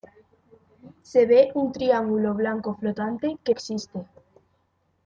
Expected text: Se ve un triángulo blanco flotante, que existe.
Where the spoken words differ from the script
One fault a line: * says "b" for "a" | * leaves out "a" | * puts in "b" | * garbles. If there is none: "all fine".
all fine